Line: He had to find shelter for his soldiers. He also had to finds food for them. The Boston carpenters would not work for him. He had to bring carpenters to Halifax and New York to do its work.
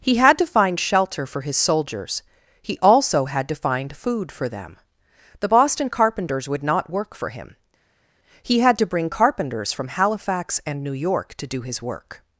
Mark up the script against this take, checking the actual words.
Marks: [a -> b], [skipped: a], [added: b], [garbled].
He had to find shelter for his soldiers. He also had to [finds -> find] food for them. The Boston carpenters would not work for him. He had to bring carpenters [to -> from] Halifax and New York to do [its -> his] work.